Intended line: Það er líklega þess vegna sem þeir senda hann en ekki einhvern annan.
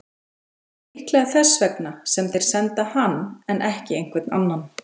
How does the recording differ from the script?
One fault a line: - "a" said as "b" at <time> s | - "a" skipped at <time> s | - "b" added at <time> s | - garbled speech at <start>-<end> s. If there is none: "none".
none